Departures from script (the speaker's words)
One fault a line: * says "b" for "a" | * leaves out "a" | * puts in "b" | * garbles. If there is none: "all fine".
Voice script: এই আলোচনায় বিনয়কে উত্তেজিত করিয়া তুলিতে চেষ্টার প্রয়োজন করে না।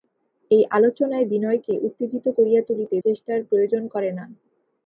all fine